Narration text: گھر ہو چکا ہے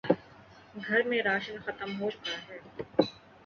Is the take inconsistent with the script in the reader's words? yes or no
yes